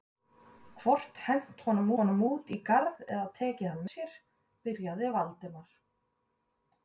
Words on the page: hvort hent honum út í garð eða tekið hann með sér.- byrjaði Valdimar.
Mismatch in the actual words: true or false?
true